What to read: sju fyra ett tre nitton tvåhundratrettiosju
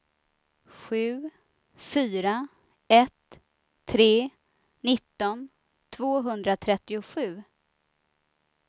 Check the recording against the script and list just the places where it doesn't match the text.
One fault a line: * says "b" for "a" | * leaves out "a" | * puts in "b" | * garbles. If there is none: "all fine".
all fine